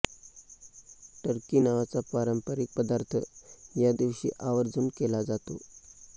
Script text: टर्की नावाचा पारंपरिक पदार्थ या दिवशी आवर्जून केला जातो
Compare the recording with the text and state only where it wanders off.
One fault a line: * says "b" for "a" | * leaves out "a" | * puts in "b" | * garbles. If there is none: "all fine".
all fine